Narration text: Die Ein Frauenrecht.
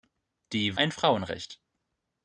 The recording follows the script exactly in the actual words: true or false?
true